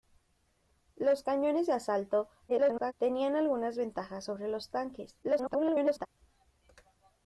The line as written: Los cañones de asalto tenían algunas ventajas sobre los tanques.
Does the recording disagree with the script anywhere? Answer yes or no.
yes